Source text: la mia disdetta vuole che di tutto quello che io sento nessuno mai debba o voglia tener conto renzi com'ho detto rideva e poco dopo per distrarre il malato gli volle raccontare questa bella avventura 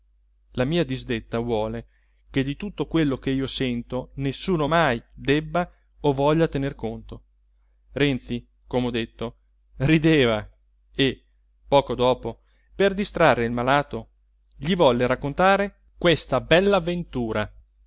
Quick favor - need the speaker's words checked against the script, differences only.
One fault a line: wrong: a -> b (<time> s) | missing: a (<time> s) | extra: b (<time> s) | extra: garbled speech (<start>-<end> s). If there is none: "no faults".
no faults